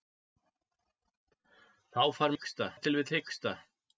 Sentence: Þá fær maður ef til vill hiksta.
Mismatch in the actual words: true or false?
true